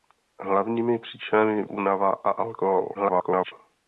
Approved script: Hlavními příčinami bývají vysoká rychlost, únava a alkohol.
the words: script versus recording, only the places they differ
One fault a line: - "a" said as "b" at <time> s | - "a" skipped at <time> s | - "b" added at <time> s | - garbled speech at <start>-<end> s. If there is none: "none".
- "bývají vysoká rychlost" skipped at 1.6 s
- garbled speech at 2.9-3.5 s